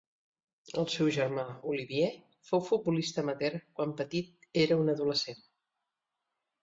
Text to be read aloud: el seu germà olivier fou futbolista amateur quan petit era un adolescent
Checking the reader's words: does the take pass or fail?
pass